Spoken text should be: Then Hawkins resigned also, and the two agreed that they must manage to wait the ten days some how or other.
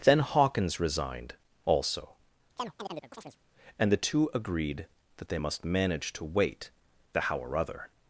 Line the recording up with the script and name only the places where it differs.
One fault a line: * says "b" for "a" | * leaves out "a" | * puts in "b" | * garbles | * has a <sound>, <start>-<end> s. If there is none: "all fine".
* has a chirp, 2.6-3.4 s
* leaves out "ten days some"